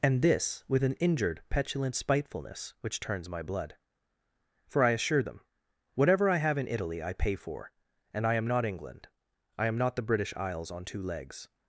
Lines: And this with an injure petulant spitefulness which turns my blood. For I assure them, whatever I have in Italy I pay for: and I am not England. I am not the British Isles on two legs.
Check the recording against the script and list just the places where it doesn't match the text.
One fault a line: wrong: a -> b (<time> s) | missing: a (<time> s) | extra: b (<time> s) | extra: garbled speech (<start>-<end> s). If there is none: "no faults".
wrong: injure -> injured (0.9 s)